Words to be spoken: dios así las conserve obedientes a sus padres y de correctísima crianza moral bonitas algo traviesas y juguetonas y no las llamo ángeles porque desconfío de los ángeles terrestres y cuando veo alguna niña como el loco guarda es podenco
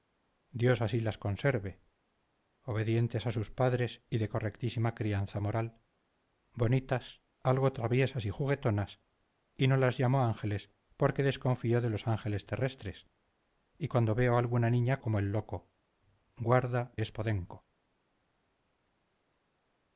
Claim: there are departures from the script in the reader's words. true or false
false